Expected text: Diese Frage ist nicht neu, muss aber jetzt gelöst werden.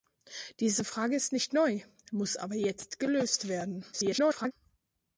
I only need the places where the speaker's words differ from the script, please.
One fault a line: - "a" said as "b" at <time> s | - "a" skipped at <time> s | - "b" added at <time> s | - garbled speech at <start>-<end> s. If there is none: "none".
- garbled speech at 3.9-4.5 s